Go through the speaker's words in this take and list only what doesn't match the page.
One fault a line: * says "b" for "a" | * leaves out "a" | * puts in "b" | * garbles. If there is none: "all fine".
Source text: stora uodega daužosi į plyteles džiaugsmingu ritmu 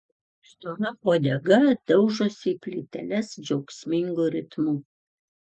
all fine